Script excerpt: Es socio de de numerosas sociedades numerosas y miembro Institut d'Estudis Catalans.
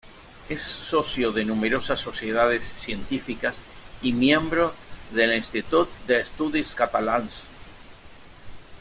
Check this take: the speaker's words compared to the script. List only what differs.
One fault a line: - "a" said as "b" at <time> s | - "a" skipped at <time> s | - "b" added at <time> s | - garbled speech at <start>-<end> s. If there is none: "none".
- "de" skipped at 1.4 s
- "numerosas" said as "científicas" at 2.8 s
- "del" added at 5.1 s